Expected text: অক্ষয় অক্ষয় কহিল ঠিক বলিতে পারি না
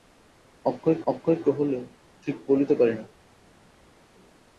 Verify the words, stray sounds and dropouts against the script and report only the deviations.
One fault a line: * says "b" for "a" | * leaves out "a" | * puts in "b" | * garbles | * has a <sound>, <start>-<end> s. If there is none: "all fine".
all fine